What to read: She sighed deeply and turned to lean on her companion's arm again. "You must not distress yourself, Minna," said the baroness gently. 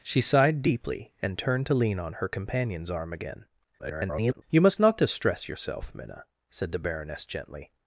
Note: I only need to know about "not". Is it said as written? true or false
true